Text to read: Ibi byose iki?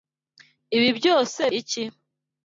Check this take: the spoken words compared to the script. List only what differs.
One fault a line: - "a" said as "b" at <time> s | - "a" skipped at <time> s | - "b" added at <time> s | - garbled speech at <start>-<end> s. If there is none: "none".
none